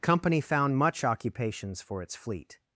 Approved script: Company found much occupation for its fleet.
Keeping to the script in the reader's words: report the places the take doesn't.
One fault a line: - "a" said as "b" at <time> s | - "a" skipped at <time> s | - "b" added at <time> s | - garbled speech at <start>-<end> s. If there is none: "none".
- "occupation" said as "occupations" at 1.0 s